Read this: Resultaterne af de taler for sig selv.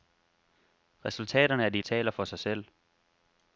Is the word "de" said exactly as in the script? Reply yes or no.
yes